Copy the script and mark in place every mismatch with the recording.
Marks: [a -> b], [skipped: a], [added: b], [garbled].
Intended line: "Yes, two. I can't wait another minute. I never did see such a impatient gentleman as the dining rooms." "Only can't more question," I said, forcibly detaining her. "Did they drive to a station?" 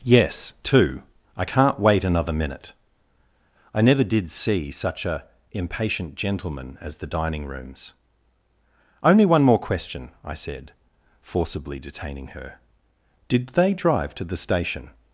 "Yes, two. I can't wait another minute. I never did see such a impatient gentleman as the dining rooms." "Only [can't -> one] more question," I said, forcibly detaining her. "Did they drive to [a -> the] station?"